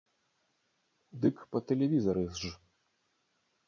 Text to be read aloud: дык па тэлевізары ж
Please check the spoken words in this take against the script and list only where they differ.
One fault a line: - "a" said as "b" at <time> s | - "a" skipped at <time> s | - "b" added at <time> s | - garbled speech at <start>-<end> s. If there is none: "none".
none